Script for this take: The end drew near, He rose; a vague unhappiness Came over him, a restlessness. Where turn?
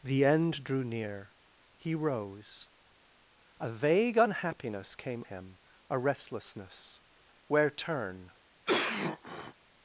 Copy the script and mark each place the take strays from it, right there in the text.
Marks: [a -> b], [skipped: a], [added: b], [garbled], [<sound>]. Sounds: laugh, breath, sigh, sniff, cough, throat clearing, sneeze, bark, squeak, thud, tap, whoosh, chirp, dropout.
The end drew near, He rose; a vague unhappiness Came [skipped: over] him, a restlessness. Where turn? [cough]